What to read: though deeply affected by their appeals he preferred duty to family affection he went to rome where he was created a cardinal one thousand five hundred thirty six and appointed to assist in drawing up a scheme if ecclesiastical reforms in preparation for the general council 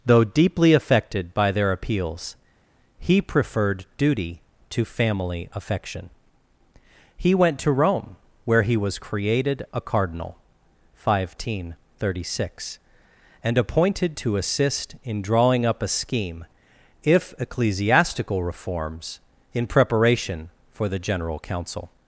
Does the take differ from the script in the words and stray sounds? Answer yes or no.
no